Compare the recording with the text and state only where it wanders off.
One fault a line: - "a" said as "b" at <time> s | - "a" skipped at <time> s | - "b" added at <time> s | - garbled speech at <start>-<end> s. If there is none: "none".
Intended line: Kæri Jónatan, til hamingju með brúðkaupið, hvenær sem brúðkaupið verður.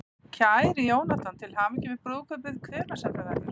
- "brúðkaupið" said as "það" at 3.2 s